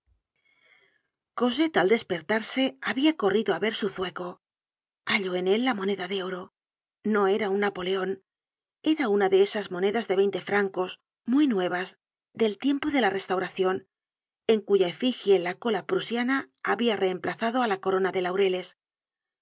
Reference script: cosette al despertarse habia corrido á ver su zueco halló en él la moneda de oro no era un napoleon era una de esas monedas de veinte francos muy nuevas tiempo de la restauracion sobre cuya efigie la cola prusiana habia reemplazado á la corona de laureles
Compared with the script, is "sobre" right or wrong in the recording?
wrong